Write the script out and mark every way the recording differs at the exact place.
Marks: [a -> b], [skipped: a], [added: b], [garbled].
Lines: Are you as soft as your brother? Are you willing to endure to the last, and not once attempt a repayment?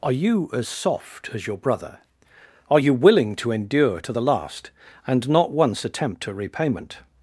Are you as soft as your brother? Are you willing to endure to the last, and not once attempt a repayment?